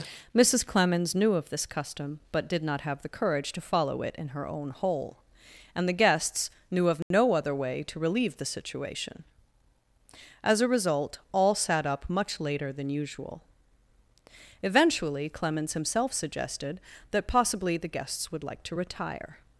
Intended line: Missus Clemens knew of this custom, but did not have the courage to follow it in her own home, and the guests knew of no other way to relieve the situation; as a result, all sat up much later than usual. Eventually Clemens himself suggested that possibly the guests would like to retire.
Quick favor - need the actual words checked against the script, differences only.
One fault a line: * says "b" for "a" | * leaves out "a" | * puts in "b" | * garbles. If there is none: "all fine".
* says "hole" for "home"